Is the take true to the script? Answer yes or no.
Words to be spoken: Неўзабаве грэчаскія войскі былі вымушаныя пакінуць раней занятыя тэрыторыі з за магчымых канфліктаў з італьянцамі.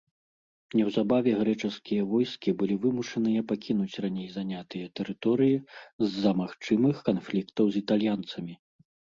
yes